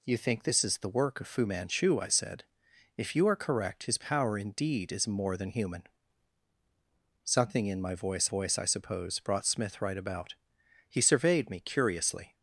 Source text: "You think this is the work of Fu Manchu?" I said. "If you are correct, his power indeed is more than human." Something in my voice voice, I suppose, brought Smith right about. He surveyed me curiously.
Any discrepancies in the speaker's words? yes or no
no